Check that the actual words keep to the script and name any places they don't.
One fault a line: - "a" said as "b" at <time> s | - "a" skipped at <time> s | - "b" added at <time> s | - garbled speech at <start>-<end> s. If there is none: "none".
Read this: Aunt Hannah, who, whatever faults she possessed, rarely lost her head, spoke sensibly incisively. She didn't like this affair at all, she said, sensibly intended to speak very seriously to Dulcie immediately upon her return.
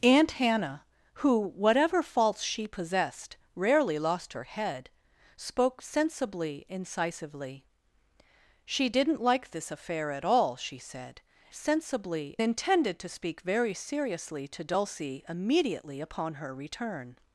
none